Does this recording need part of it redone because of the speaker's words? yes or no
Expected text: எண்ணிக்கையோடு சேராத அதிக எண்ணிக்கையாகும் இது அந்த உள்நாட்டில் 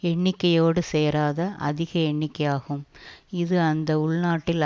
no